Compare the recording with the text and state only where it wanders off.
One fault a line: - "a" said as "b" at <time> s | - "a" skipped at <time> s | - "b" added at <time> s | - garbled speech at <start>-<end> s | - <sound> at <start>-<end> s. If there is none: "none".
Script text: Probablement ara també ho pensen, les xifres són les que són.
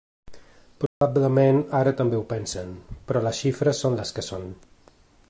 - dropout at 0.9-1.0 s
- "però" added at 3.1 s